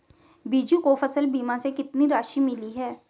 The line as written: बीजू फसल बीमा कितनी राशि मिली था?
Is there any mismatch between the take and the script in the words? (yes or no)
yes